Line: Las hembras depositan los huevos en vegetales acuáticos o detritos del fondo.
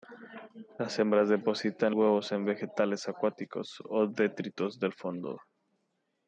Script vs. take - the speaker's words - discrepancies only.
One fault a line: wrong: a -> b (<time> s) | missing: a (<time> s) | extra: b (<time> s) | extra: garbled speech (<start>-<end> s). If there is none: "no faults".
missing: los (1.9 s)